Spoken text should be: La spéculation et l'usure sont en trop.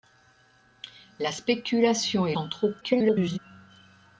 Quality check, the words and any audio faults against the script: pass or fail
fail